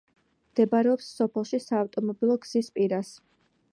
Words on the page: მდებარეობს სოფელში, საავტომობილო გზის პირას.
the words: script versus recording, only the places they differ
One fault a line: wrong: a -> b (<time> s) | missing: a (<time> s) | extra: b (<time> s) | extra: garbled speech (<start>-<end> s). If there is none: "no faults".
no faults